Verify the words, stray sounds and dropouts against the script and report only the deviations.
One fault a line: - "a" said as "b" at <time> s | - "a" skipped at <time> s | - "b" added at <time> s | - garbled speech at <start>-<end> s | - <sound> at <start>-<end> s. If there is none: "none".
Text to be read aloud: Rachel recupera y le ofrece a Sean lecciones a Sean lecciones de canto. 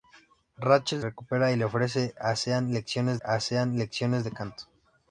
none